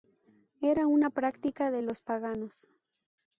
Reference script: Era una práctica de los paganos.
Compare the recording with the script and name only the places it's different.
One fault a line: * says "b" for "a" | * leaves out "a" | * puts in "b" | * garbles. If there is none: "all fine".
all fine